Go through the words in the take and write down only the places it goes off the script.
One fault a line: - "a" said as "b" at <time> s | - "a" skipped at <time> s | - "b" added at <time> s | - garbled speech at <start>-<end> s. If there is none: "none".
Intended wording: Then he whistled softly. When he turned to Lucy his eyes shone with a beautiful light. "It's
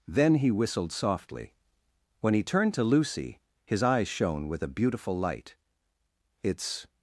none